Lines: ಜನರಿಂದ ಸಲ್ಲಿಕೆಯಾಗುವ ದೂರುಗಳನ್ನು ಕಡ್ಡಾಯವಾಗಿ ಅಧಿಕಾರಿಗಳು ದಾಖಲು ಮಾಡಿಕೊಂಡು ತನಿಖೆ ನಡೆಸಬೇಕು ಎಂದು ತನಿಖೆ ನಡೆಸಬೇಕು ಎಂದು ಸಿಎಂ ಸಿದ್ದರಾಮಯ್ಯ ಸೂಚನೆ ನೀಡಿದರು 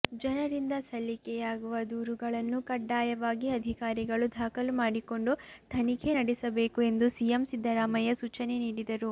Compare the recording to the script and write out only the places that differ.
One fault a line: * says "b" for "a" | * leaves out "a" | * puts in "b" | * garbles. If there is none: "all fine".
* leaves out "ತನಿಖೆ ನಡೆಸಬೇಕು ಎಂದು"